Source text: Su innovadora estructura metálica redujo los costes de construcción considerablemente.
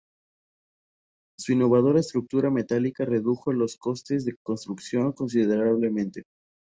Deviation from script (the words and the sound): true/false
false